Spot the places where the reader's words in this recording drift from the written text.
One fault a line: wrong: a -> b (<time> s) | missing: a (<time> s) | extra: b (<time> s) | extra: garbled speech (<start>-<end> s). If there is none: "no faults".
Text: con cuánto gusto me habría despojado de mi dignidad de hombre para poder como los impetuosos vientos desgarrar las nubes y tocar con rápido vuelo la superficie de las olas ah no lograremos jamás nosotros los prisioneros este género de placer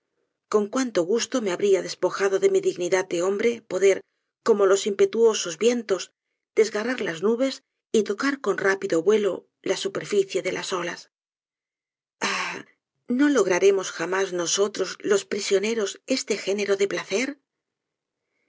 missing: para (3.5 s)